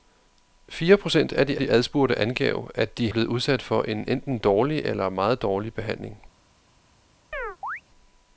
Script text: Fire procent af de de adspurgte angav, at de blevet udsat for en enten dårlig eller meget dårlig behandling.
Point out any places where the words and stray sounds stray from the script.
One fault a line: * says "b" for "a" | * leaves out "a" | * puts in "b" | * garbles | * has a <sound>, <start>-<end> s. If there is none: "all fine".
* has a chirp, 7.3-7.8 s